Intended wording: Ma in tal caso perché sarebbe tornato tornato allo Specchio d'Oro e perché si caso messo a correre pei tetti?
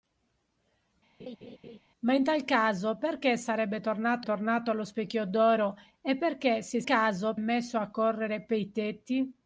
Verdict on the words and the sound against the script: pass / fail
fail